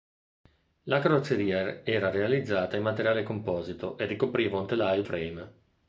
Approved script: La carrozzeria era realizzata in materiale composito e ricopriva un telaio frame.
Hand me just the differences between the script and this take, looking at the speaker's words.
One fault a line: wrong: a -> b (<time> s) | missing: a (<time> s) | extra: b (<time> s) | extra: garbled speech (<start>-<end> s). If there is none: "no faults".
no faults